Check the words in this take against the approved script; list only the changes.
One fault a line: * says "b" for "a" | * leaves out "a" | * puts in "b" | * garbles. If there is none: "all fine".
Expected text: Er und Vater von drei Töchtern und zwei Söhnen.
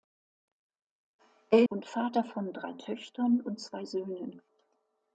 all fine